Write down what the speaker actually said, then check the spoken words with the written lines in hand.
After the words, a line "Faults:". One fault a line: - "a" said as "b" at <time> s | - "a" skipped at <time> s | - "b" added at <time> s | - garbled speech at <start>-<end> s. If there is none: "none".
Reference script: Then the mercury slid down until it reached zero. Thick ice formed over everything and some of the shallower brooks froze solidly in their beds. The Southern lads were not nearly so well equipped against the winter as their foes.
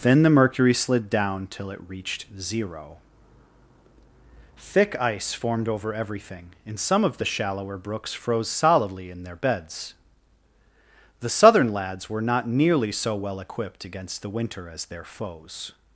Then the mercury slid down till it reached zero. Thick ice formed over everything and some of the shallower brooks froze solidly in their beds. The Southern lads were not nearly so well equipped against the winter as their foes.
Faults:
- "until" said as "till" at 1.5 s